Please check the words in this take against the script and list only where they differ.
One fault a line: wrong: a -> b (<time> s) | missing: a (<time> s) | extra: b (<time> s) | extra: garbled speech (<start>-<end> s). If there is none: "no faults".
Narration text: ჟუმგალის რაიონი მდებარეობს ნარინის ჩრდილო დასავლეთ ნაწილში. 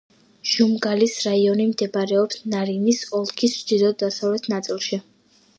extra: ოლქის (3.2 s)